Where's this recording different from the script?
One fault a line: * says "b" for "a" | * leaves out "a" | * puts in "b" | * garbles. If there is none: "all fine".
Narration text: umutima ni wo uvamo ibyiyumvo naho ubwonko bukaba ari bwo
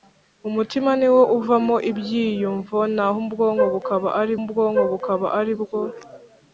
* puts in "ubwonko bukaba ari"